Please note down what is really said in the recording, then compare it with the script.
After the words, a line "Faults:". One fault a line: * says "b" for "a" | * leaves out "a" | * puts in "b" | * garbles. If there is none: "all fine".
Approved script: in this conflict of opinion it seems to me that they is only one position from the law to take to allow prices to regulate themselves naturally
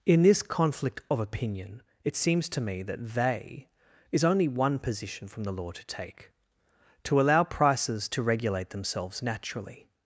in this conflict of opinion it seems to me that they is only one position from the law to take to allow prices to regulate themselves naturally
Faults:
all fine